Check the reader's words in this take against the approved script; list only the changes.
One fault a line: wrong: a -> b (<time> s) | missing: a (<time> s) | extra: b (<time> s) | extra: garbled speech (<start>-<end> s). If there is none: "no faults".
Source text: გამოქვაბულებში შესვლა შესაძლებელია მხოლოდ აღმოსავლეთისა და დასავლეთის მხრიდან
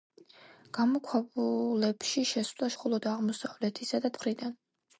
missing: შესაძლებელია (2.7 s)
missing: დასავლეთის (4.2 s)